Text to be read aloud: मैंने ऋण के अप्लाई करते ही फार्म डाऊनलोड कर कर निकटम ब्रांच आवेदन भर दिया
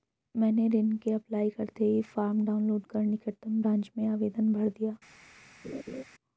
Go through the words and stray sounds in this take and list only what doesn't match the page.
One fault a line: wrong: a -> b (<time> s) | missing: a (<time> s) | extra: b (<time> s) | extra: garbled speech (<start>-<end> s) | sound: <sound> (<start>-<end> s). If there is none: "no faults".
missing: कर (3.0 s)
extra: में (4.0 s)
sound: laugh (5.6-6.0 s)